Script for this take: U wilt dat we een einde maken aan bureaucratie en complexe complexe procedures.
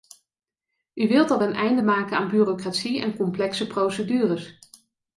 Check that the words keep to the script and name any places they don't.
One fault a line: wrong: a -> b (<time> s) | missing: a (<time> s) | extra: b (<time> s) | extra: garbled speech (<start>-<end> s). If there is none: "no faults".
missing: complexe (3.7 s)